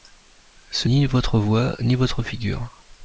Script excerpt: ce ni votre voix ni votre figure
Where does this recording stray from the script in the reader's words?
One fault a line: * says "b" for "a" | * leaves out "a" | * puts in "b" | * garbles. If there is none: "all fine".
all fine